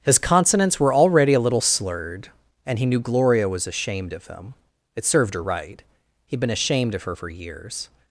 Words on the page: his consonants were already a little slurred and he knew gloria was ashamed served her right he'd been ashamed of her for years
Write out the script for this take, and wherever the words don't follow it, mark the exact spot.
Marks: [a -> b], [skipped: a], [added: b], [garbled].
his consonants were already a little slurred and he knew gloria was ashamed [added: of him it] served her right he'd been ashamed of her for years